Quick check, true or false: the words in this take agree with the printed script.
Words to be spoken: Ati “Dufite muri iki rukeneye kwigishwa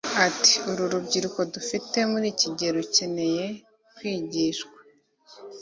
false